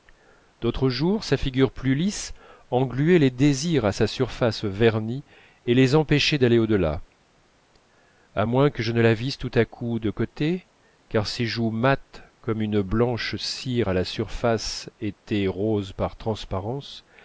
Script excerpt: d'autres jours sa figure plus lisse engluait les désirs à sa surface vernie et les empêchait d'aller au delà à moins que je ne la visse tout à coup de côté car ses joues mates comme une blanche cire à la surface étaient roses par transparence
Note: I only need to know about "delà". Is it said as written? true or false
true